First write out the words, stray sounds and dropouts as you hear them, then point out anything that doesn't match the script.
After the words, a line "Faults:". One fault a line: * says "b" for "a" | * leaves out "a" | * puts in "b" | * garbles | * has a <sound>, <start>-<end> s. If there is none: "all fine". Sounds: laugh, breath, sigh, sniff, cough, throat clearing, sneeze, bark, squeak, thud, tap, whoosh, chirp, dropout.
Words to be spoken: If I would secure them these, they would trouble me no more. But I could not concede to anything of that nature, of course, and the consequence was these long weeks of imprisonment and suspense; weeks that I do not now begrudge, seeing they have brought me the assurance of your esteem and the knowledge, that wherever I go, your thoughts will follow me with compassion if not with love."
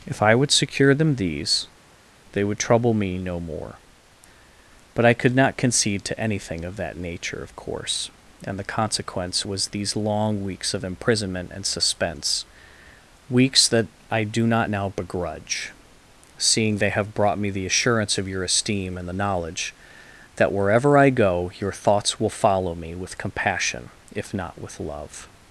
If I would secure them these, they would trouble me no more. But I could not concede to anything of that nature, of course, and the consequence was these long weeks of imprisonment and suspense; weeks that I do not now begrudge, seeing they have brought me the assurance of your esteem and the knowledge, that wherever I go, your thoughts will follow me with compassion if not with love."
Faults:
all fine